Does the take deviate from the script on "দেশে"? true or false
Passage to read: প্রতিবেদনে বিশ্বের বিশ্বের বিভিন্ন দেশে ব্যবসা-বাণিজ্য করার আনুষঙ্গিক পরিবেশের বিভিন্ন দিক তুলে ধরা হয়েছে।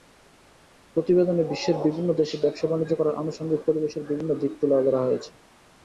false